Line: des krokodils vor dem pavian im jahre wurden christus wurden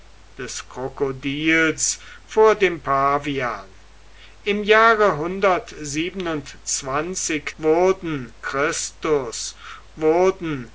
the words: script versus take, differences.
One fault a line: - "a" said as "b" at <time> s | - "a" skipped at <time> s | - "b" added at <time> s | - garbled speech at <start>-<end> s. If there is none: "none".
none